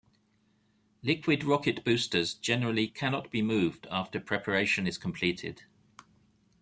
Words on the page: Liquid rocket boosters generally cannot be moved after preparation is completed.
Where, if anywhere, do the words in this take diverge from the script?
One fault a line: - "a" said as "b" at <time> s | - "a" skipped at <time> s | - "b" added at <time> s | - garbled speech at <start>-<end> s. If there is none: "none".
none